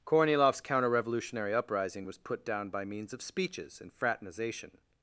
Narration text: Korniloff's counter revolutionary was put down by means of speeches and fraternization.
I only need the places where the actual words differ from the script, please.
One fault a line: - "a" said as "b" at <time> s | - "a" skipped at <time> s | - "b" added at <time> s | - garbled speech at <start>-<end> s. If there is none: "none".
- "uprising" added at 1.5 s